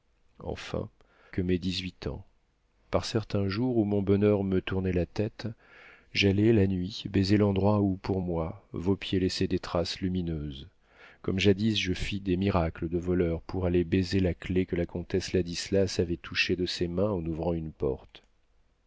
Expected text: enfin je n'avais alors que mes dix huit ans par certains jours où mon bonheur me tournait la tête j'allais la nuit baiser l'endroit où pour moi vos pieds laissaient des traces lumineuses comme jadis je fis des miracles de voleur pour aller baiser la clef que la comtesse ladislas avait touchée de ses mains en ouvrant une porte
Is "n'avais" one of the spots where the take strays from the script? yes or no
yes